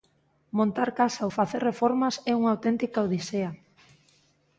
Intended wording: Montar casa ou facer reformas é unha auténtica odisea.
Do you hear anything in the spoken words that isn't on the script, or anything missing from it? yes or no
no